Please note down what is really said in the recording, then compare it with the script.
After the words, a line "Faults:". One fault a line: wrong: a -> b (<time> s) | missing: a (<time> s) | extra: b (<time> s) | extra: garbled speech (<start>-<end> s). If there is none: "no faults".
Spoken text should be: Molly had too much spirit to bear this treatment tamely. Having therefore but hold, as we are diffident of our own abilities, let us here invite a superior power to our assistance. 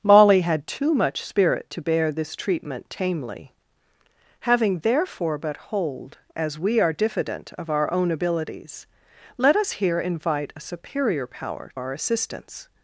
Molly had too much spirit to bear this treatment tamely. Having therefore but hold, as we are diffident of our own abilities, let us here invite a superior power our assistance.
Faults:
missing: to (11.7 s)